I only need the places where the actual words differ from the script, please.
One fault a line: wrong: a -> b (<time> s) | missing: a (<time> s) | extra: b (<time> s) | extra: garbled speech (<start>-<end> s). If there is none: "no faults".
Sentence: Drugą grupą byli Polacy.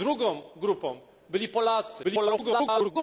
extra: garbled speech (2.0-3.0 s)